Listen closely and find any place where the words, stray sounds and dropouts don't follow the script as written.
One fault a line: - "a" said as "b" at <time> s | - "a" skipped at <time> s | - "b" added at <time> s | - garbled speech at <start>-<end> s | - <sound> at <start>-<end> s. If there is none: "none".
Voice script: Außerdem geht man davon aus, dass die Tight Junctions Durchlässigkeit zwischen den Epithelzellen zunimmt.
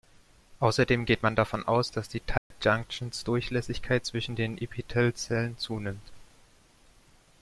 - dropout at 2.4-2.5 s